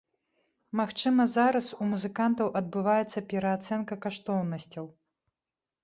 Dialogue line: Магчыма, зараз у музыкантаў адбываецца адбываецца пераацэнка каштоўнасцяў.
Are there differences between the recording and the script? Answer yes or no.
yes